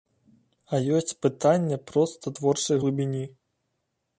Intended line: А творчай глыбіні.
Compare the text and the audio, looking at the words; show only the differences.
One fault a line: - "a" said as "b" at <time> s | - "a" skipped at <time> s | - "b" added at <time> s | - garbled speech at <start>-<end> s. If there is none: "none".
- "ёсць пытанне проста" added at 1.0 s